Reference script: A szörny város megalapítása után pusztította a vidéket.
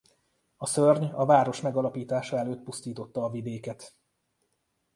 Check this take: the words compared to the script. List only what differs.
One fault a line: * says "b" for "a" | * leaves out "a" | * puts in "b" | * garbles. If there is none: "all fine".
* puts in "a"
* says "előtt" for "után"